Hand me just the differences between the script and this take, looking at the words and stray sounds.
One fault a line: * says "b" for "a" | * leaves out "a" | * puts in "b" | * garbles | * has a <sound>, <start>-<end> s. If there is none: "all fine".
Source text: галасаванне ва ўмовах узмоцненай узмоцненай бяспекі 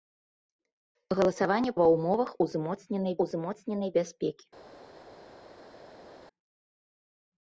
all fine